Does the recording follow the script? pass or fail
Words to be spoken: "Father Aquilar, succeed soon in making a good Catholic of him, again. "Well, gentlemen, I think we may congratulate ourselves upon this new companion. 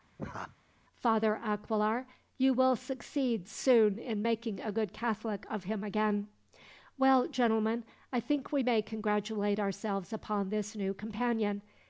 fail